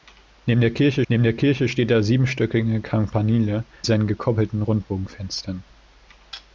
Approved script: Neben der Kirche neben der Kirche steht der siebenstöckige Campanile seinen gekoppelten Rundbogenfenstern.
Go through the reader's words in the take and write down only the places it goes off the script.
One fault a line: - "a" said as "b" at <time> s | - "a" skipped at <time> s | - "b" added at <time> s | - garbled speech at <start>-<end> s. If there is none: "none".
none